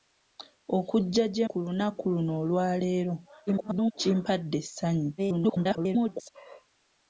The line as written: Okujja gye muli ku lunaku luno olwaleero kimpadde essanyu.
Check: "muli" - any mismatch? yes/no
yes